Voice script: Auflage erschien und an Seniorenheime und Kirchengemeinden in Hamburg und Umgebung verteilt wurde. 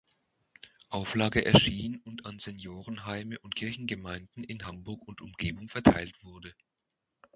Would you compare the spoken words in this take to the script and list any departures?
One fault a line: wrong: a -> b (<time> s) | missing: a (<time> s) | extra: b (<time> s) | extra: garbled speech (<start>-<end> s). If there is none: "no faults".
no faults